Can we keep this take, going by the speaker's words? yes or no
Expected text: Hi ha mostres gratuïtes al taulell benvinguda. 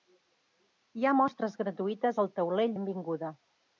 yes